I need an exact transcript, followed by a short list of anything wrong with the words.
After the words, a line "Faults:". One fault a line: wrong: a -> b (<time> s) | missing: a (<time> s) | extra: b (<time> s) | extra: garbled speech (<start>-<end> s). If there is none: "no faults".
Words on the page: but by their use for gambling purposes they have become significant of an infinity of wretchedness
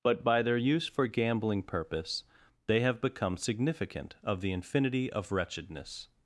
but by their use for gambling purpose they have become significant of the infinity of wretchedness
Faults:
wrong: purposes -> purpose (1.6 s)
wrong: an -> the (4.4 s)